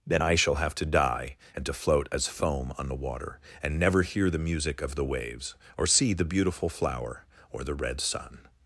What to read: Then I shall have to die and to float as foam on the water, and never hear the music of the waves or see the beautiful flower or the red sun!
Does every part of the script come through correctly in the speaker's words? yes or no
yes